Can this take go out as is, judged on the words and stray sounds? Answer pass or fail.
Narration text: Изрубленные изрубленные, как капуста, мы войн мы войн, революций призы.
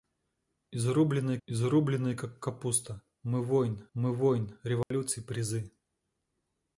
fail